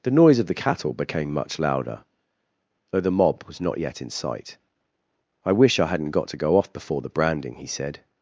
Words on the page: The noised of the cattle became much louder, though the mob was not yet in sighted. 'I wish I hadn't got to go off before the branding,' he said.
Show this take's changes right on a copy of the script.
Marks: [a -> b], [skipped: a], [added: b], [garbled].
The [noised -> noise] of the cattle became much louder, though the mob was not yet in [sighted. -> sight] 'I wish I hadn't got to go off before the branding,' he said.